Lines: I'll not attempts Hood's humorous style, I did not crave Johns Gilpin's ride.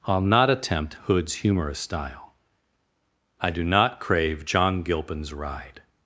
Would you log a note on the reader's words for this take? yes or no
yes